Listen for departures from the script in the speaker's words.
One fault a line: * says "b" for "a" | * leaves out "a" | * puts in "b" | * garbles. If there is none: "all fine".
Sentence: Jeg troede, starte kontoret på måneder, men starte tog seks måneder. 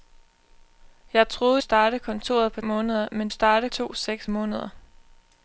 all fine